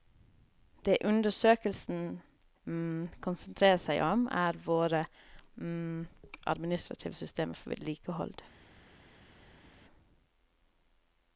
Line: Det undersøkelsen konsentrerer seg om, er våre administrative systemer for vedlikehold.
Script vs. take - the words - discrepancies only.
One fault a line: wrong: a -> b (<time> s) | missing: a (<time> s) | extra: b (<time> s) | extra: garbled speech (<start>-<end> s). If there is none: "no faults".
no faults